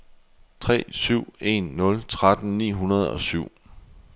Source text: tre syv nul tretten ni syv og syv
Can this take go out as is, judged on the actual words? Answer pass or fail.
fail